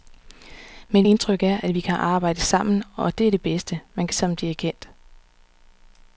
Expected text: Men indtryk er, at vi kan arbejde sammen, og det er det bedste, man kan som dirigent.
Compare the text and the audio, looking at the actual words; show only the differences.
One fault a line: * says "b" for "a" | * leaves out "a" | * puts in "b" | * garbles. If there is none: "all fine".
all fine